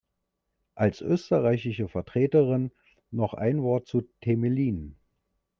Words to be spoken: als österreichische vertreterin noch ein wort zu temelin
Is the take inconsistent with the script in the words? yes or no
no